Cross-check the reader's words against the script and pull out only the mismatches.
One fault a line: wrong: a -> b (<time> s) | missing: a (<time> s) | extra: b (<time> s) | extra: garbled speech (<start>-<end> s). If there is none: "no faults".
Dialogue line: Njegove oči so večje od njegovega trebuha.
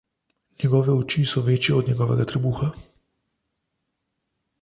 no faults